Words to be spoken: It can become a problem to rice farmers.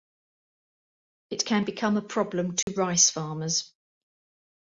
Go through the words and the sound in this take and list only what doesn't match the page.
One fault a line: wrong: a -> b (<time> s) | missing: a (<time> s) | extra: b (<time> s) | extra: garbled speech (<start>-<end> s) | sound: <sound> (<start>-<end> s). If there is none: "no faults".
sound: dropout (2.6-2.7 s)